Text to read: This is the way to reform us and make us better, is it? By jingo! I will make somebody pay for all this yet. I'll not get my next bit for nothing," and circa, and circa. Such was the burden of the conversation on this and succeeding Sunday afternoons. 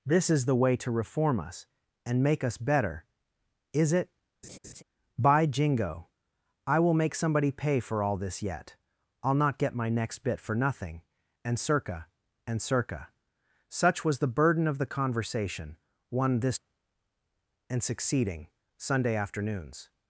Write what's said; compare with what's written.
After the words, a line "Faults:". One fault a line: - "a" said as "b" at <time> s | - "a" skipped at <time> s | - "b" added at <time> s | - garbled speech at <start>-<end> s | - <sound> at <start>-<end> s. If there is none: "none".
This is the way to reform us and make us better, is it? By jingo! I will make somebody pay for all this yet. I'll not get my next bit for nothing," and circa, and circa. Such was the burden of the conversation one this and succeeding Sunday afternoons.
Faults:
- laugh at 4.4-4.8 s
- "on" said as "one" at 16.1 s